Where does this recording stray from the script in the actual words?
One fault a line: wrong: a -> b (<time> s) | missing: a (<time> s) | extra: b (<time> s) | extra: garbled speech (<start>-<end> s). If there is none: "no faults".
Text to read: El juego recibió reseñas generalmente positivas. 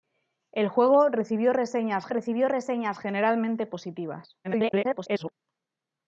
extra: recibió reseñas (2.1 s)
extra: garbled speech (4.4-5.3 s)